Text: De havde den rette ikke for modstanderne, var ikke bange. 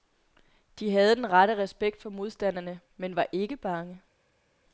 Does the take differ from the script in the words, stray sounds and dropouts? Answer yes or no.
yes